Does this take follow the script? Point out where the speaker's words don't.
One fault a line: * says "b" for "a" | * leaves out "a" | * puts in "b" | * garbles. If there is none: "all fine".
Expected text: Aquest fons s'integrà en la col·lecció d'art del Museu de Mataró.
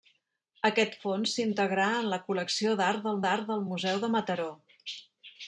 * puts in "d'art del"